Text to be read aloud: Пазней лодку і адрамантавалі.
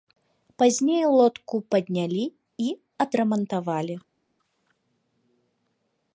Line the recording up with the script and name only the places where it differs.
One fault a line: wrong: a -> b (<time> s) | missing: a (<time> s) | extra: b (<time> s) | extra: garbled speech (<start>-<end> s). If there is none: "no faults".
extra: паднялі (1.8 s)